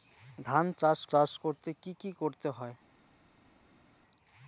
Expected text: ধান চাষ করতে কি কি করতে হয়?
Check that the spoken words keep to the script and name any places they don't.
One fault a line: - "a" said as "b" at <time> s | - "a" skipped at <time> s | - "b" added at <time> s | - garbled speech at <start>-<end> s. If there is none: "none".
- "চাষ" added at 1.1 s